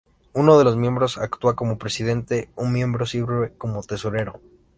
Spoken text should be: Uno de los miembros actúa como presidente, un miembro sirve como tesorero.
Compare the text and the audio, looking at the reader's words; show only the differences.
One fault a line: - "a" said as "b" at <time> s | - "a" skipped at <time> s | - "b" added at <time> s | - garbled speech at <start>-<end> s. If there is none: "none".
none